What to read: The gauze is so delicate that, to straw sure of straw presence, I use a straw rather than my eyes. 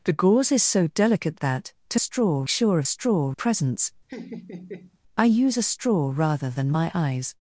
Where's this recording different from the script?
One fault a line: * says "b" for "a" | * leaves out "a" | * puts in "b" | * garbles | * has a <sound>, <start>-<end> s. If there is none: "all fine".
* has a laugh, 4.1-5.0 s